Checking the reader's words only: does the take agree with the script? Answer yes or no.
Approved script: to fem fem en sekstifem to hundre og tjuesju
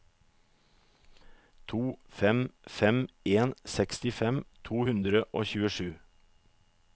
yes